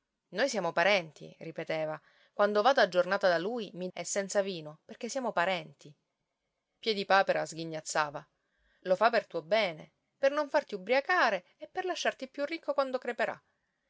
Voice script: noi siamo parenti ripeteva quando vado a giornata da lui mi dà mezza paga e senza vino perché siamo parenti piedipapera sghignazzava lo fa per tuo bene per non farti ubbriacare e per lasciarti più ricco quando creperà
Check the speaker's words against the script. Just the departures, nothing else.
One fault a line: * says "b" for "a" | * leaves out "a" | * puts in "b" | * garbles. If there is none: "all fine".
* leaves out "dà mezza paga"